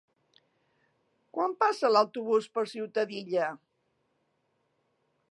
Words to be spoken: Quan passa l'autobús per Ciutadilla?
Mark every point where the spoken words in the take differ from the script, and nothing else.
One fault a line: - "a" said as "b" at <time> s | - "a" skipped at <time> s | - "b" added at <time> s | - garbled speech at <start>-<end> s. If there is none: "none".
none